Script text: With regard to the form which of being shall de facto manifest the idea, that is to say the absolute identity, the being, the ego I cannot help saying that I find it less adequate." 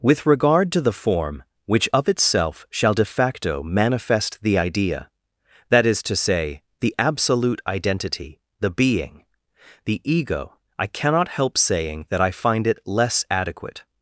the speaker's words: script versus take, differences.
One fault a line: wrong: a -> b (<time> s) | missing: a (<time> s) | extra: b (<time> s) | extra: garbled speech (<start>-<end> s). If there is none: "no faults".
wrong: being -> itself (2.1 s)